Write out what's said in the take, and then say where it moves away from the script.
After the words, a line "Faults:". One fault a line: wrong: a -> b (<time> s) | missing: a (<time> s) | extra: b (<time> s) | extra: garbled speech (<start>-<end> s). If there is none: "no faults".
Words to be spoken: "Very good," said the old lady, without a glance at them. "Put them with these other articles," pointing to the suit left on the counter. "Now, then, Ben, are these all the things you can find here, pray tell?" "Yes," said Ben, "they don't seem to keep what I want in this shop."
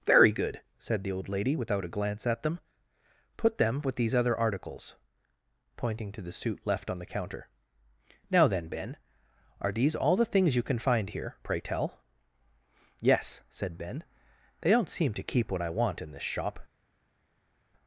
"Very good," said the old lady, without a glance at them. "Put them with these other articles," pointing to the suit left on the counter. "Now, then, Ben, are these all the things you can find here, pray tell?" "Yes," said Ben, "they don't seem to keep what I want in this shop."
Faults:
no faults